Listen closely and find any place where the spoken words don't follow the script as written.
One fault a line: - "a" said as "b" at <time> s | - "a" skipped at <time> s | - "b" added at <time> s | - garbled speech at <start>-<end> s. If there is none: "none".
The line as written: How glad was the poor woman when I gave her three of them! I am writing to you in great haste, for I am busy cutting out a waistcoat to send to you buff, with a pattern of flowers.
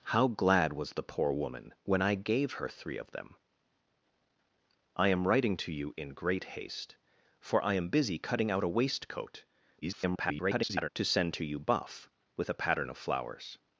- garbled speech at 9.8-10.9 s